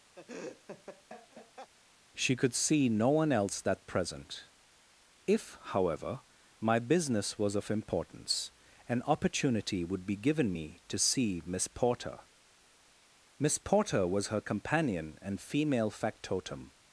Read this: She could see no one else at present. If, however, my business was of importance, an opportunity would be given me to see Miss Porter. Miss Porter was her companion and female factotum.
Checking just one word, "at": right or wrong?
wrong